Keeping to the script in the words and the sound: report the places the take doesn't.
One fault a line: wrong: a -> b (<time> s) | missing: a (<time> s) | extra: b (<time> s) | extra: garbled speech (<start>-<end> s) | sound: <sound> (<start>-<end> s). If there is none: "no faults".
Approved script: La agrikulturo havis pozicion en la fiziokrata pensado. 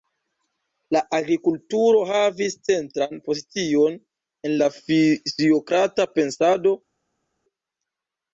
extra: centran (2.7 s)